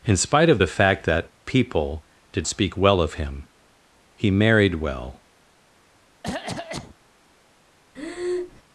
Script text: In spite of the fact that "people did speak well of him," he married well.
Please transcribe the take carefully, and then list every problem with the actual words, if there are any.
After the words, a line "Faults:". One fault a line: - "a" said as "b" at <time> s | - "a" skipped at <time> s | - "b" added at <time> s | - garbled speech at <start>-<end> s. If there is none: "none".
In spite of the fact that "people did speak well of him," he married well.
Faults:
none